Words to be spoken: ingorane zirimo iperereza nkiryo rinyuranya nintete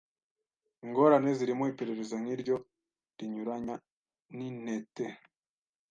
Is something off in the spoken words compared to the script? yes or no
no